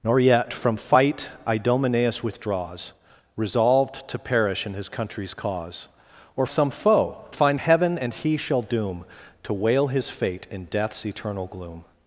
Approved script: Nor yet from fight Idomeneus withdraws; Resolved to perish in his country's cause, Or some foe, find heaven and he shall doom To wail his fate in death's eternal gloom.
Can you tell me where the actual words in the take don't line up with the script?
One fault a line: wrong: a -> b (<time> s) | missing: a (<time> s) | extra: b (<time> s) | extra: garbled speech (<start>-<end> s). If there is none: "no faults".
no faults